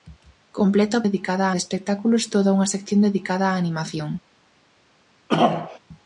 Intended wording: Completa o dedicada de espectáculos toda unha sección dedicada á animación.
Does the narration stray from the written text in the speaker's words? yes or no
no